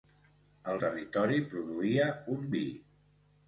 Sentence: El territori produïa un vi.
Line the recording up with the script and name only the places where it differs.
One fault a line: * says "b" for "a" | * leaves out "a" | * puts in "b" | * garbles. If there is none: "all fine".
all fine